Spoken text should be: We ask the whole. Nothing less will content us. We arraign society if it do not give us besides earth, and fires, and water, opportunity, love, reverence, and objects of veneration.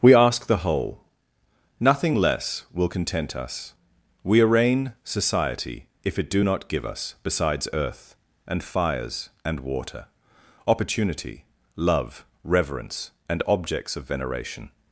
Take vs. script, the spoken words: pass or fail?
pass